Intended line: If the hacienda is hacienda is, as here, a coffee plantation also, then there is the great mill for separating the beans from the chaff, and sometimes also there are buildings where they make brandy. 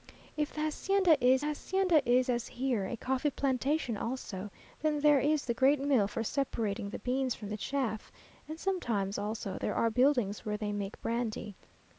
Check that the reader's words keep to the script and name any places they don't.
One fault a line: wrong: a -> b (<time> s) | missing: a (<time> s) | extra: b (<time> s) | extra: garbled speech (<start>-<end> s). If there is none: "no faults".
no faults